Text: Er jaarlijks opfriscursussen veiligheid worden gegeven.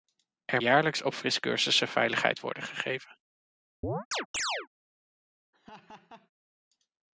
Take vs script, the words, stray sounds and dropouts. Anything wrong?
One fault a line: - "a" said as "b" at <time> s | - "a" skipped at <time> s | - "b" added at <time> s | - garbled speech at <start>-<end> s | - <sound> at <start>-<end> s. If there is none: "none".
- chirp at 3.8-4.7 s
- laugh at 5.5-6.3 s